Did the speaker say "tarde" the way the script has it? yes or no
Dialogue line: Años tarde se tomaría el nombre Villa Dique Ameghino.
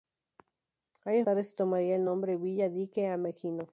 yes